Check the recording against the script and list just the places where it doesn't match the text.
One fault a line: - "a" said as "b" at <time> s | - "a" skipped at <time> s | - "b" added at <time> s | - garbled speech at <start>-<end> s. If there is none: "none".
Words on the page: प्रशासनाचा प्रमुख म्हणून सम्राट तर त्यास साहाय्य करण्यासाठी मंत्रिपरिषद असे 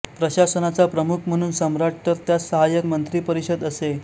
- "करण्यासाठी" skipped at 2.8 s